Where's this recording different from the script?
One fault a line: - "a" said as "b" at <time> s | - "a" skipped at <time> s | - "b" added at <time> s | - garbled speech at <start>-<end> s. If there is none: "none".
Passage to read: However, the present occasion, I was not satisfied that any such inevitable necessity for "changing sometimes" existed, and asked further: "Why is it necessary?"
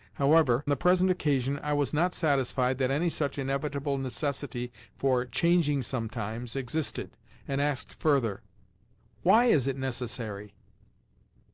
none